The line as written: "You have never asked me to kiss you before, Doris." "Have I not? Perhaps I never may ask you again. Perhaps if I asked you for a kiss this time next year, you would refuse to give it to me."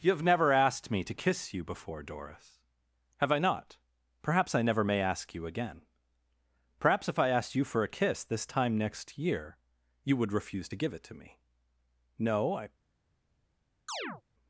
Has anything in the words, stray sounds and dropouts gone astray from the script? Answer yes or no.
yes